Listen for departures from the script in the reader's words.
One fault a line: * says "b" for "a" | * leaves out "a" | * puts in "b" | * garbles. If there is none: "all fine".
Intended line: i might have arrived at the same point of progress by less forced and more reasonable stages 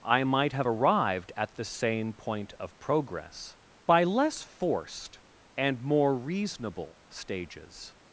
all fine